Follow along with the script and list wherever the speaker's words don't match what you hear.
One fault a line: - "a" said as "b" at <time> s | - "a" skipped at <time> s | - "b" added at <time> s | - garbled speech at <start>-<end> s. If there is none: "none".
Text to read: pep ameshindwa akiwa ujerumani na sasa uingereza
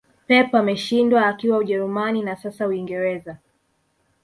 none